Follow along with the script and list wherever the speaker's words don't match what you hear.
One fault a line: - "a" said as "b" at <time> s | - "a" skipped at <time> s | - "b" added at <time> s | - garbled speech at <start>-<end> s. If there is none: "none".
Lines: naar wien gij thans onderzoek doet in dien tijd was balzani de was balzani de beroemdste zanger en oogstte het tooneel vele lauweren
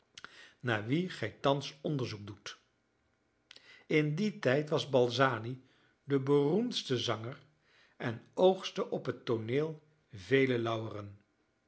- "was balzani de" skipped at 6.2 s
- "op" added at 8.9 s